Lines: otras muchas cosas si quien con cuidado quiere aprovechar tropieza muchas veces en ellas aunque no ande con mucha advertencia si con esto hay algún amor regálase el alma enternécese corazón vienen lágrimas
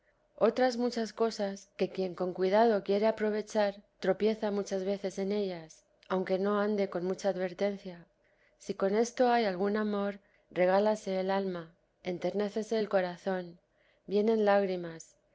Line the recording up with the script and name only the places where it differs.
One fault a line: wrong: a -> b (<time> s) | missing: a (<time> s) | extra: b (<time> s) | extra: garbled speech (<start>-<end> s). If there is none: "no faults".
wrong: si -> que (1.8 s)
extra: el (12.8 s)